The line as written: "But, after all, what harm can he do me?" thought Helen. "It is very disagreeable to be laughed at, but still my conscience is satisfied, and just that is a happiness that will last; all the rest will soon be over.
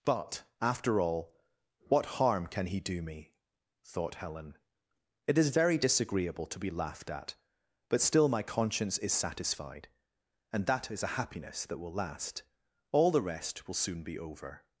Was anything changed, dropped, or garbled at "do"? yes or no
no